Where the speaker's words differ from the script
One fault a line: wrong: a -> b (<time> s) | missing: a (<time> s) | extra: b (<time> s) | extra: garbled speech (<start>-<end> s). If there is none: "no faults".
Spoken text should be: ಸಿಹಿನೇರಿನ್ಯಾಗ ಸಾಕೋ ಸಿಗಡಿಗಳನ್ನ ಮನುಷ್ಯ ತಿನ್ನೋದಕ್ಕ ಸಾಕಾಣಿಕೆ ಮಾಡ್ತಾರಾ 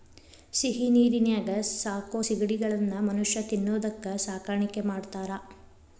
no faults